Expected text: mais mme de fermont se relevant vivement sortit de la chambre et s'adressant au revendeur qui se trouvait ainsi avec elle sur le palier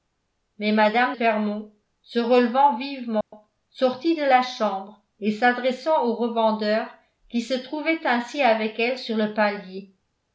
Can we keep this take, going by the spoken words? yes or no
no